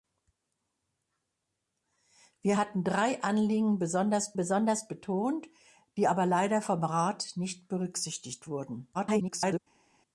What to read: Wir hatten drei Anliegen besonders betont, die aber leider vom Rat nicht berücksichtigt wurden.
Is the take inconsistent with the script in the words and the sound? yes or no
yes